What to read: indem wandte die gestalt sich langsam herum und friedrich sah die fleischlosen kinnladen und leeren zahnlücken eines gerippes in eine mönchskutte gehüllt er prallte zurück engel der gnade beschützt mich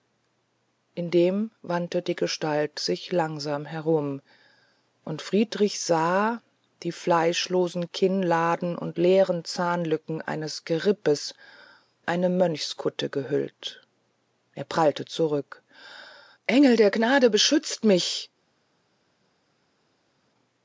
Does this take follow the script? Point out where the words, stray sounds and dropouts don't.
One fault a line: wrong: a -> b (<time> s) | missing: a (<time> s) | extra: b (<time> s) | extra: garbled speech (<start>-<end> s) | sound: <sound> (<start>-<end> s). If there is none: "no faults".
missing: in (11.3 s)